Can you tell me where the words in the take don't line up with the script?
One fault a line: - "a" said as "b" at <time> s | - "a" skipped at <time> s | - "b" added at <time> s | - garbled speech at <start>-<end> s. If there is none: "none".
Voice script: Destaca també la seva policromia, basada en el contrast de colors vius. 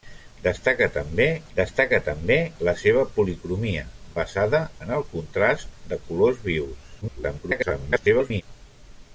- "destaca també" added at 1.6 s
- garbled speech at 7.0-8.4 s